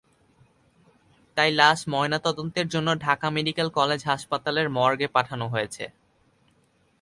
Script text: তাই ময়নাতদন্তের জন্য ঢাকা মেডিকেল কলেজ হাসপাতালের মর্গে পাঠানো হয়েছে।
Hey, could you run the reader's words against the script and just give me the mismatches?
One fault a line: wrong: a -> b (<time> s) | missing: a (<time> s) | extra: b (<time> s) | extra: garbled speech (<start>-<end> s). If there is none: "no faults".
extra: লাশ (1.5 s)